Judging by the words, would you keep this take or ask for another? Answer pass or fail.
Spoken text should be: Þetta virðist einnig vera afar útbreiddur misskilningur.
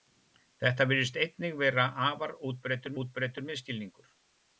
fail